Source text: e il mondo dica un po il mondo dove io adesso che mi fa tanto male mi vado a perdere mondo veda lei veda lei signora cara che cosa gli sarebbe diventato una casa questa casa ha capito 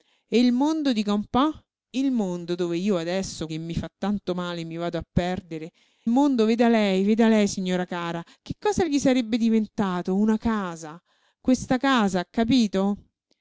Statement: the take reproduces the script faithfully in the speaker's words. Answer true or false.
true